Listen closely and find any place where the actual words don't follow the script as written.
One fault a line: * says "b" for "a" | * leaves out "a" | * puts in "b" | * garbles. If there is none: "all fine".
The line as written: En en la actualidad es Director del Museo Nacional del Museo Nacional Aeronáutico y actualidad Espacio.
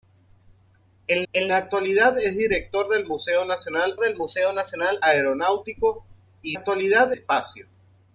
all fine